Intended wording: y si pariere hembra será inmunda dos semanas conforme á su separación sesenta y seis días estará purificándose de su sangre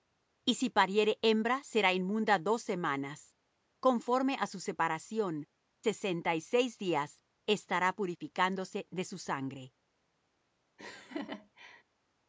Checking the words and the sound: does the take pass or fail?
fail